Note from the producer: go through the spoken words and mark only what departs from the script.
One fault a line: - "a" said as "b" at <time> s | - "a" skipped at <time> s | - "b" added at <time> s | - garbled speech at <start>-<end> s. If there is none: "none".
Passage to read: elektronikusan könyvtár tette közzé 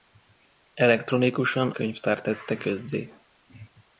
none